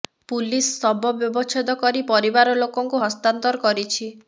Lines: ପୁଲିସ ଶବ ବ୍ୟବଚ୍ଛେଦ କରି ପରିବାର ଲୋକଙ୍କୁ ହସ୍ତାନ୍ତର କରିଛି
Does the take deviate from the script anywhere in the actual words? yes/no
no